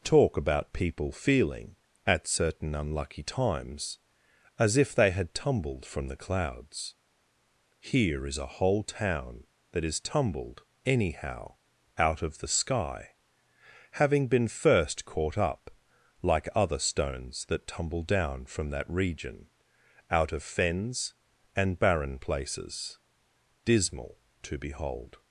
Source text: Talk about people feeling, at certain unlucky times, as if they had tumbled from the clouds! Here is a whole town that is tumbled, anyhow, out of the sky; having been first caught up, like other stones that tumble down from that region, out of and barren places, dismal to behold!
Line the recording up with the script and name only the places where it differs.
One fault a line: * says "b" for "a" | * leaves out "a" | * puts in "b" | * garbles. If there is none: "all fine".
* puts in "fens"